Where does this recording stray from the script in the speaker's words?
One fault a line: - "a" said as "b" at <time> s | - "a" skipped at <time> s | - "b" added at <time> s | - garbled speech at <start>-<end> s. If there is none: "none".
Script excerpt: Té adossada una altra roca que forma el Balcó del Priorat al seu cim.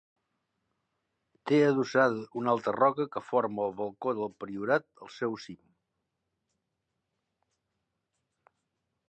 none